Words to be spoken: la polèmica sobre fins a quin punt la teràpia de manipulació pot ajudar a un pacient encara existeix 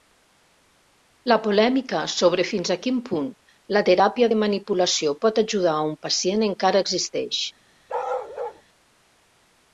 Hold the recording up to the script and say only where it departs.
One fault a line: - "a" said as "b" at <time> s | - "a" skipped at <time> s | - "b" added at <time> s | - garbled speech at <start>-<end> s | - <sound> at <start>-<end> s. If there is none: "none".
- bark at 7.9-8.6 s